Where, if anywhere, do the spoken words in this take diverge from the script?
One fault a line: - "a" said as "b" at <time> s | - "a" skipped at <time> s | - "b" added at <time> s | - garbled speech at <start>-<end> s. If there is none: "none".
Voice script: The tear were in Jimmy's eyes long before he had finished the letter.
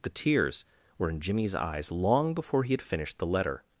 - "tear" said as "tears" at 0.1 s